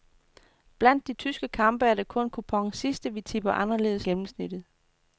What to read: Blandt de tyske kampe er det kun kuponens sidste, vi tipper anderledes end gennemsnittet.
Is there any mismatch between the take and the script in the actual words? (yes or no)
yes